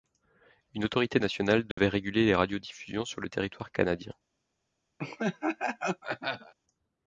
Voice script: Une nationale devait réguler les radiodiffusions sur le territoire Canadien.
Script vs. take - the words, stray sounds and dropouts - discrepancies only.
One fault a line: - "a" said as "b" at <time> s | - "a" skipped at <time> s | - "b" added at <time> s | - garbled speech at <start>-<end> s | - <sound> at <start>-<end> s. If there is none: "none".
- "autorité" added at 0.8 s
- dropout at 1.7-1.8 s
- laugh at 5.0-6.5 s